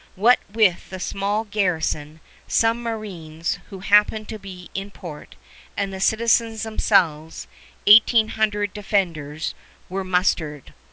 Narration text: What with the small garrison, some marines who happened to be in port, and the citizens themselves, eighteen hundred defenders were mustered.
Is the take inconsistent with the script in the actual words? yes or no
no